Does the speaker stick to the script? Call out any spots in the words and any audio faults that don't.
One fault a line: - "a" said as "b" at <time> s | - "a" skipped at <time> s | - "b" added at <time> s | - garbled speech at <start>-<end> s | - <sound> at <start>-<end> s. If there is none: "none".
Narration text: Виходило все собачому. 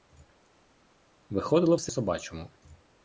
none